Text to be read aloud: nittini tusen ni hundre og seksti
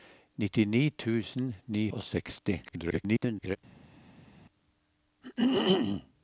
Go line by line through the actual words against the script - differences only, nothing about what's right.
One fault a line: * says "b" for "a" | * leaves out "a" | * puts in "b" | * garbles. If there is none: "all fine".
* leaves out "hundre"
* garbles